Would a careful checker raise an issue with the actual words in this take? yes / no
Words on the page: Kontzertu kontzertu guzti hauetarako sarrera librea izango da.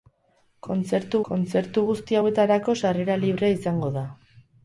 no